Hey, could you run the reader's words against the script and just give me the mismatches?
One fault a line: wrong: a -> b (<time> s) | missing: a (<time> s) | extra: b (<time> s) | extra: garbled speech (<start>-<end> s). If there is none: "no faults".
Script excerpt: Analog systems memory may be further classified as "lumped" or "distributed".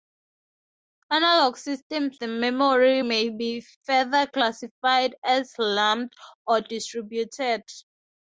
no faults